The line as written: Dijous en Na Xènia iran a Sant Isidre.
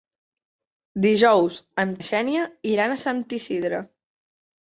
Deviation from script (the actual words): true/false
false